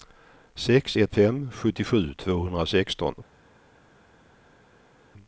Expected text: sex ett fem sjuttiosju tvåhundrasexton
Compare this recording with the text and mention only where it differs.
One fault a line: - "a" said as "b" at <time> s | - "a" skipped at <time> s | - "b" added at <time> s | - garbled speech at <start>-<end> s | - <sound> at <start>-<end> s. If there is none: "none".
none